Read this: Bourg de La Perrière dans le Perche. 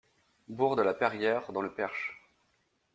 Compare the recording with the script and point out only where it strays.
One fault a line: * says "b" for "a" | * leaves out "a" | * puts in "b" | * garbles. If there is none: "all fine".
all fine